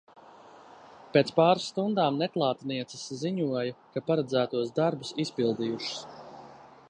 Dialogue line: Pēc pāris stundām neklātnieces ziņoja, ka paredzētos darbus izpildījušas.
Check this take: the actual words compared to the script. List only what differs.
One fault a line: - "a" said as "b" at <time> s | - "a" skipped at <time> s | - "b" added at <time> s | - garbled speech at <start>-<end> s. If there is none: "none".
none